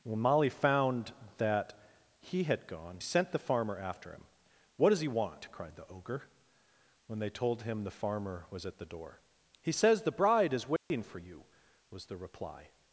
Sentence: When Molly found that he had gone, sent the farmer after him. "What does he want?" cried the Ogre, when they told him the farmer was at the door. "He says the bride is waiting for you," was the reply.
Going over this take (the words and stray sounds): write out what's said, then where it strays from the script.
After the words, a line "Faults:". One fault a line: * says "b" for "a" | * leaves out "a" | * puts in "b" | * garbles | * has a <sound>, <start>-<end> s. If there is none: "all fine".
When Molly found that he had gone, sent the farmer after him. "What does he want?" cried the Ogre, when they told him the farmer was at the door. "He says the bride is waiting for you," was the reply.
Faults:
* has a dropout, 10.8-10.9 s